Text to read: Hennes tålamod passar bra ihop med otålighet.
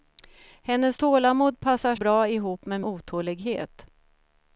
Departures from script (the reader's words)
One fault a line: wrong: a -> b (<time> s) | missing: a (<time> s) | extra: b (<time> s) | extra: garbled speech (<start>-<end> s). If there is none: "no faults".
no faults